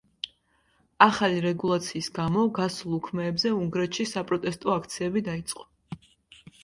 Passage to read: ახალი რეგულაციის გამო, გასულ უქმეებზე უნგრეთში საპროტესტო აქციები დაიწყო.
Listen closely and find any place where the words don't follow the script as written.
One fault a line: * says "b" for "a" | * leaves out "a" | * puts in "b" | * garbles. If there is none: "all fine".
all fine